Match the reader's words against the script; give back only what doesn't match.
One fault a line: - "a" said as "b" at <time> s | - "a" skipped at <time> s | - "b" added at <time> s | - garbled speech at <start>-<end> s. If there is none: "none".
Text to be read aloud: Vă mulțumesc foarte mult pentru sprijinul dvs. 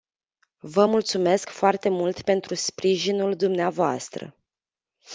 none